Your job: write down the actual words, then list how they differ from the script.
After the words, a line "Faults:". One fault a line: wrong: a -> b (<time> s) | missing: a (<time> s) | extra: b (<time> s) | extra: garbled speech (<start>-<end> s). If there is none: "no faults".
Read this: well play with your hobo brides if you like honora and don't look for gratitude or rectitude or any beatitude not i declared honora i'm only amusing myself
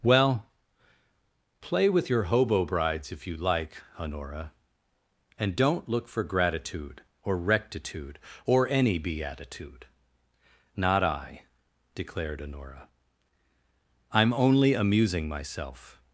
well play with your hobo brides if you like honora and don't look for gratitude or rectitude or any beatitude not i declared honora i'm only amusing myself
Faults:
no faults